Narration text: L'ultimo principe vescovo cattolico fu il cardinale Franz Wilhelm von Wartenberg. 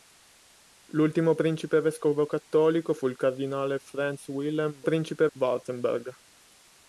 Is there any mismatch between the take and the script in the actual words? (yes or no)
yes